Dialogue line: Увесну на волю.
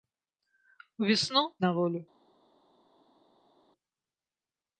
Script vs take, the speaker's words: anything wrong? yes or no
no